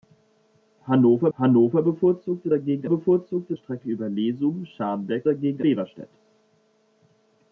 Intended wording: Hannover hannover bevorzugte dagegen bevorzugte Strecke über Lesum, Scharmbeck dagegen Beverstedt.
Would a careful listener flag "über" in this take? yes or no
no